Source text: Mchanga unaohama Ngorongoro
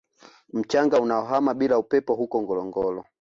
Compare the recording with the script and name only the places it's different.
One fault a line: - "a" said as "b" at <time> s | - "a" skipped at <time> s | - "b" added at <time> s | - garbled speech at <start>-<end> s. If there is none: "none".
- "bila upepo huko" added at 1.5 s